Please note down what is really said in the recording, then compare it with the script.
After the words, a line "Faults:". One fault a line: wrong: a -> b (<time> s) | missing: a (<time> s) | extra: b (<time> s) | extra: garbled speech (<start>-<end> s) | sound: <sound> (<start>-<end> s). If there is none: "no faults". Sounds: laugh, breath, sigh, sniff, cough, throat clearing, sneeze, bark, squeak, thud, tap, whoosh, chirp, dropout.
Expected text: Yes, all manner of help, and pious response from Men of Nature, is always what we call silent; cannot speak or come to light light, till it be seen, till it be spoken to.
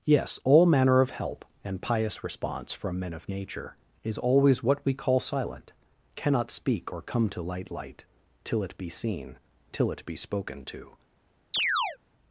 Yes, all manner of help, and pious response from Men of Nature, is always what we call silent; cannot speak or come to light light, till it be seen, till it be spoken to.
Faults:
sound: chirp (11.5-12.0 s)